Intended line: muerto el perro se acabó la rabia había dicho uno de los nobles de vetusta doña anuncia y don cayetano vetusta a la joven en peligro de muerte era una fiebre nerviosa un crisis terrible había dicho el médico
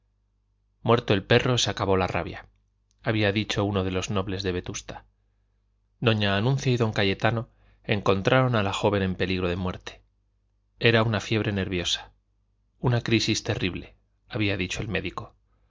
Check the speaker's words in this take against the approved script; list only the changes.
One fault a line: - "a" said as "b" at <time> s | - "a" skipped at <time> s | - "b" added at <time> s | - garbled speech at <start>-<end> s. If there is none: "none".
- "vetusta" said as "encontraron" at 7.8 s
- "un" said as "una" at 12.8 s